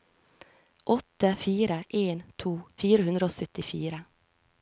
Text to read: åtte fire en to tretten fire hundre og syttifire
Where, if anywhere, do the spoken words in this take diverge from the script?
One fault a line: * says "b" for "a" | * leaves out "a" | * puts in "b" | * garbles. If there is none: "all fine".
* leaves out "tretten"